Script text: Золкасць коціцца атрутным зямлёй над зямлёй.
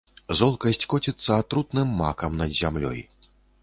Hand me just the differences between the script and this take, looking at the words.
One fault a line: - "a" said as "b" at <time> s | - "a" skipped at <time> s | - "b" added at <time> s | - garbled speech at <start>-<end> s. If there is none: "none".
- "зямлёй" said as "макам" at 2.0 s